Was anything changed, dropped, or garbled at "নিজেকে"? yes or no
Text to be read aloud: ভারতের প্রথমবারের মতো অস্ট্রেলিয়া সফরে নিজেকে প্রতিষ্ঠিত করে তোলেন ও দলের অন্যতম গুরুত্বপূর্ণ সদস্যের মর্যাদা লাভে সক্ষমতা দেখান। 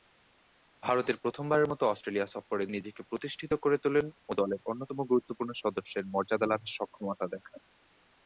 no